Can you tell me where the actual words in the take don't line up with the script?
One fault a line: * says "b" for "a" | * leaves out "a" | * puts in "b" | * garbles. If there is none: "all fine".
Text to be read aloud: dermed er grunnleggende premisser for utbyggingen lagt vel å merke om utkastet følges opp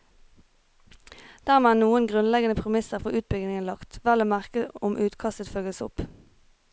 * puts in "noen"